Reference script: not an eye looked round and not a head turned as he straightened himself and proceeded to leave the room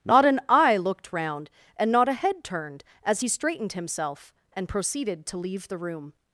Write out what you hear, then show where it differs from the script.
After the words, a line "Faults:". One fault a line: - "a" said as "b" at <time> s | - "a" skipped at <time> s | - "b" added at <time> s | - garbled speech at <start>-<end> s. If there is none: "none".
not an eye looked round and not a head turned as he straightened himself and proceeded to leave the room
Faults:
none